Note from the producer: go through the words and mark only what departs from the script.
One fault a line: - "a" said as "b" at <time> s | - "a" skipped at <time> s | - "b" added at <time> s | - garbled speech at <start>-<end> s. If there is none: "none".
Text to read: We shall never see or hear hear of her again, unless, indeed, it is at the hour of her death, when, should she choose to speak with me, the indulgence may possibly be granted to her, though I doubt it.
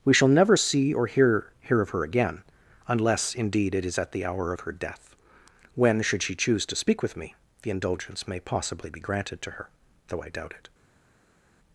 none